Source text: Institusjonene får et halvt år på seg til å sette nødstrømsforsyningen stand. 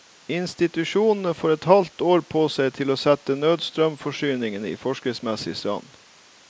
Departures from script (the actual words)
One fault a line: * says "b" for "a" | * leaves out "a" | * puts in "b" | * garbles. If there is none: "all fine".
* puts in "i forskriftsmessig"